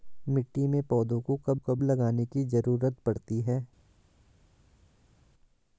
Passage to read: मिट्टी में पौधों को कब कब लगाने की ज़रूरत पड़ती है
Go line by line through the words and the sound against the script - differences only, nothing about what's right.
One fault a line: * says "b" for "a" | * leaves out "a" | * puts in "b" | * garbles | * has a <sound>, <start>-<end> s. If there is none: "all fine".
all fine